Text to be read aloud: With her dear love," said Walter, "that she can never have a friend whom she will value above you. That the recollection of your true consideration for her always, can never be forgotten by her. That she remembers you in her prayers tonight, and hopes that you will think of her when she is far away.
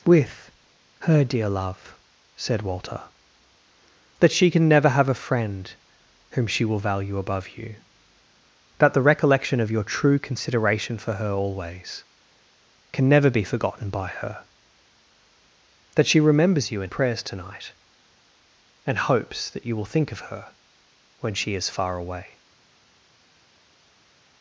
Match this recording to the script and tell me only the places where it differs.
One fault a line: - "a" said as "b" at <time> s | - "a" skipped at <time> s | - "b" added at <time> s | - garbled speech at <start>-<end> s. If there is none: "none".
- "her" skipped at 16.9 s